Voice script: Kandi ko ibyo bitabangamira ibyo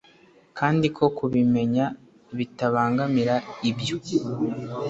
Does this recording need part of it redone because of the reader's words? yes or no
yes